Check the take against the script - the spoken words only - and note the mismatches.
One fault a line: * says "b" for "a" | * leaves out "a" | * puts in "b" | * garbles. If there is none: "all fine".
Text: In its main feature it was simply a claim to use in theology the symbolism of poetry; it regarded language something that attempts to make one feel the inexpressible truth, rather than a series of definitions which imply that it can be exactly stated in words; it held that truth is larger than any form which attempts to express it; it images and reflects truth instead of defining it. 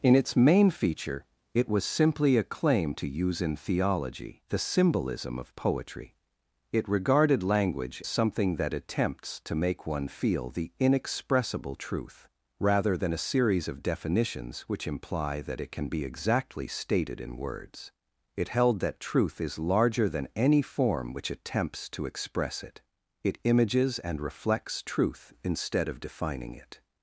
all fine